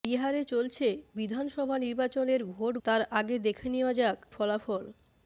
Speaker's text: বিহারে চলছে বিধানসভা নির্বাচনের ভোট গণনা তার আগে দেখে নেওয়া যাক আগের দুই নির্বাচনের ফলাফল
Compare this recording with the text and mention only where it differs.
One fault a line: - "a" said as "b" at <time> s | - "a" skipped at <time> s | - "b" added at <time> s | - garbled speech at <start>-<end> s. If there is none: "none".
- "গণনা" skipped at 2.7 s
- "আগের দুই নির্বাচনের" skipped at 4.2 s